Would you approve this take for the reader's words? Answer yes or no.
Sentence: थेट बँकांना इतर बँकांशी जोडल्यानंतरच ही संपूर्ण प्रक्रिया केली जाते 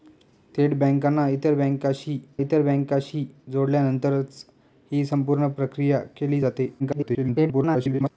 no